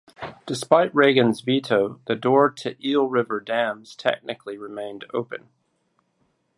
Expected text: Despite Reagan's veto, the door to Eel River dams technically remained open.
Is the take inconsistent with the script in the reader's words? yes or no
no